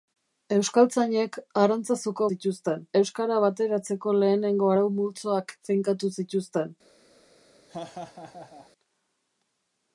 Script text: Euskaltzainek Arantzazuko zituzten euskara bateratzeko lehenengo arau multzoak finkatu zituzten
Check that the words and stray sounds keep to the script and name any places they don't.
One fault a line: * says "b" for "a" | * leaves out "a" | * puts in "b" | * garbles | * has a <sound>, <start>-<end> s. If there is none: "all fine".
* has a laugh, 7.7-8.7 s